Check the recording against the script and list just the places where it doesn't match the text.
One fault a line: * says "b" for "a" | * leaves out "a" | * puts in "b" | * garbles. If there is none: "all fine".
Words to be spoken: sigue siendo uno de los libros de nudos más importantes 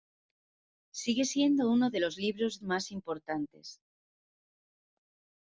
* leaves out "de nudos"